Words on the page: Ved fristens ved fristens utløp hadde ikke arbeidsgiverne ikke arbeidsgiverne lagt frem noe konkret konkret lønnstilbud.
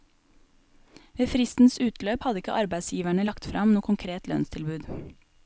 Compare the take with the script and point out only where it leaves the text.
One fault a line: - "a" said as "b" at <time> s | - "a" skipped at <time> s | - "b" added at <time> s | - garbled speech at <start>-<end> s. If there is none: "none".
- "ved fristens" skipped at 1.8 s
- "ikke arbeidsgiverne" skipped at 3.2 s
- "konkret" skipped at 4.3 s